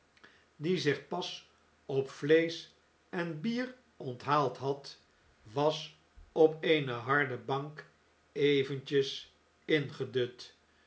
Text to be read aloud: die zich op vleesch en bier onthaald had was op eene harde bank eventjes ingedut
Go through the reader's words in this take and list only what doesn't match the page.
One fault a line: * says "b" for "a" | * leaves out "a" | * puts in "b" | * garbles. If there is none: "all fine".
* puts in "pas"